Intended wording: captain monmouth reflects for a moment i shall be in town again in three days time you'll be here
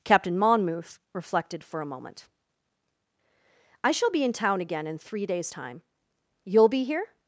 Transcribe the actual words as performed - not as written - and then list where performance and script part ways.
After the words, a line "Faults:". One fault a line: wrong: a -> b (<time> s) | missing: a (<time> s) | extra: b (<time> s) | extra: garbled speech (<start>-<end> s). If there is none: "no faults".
captain monmouth reflected for a moment i shall be in town again in three days time you'll be here
Faults:
wrong: reflects -> reflected (1.1 s)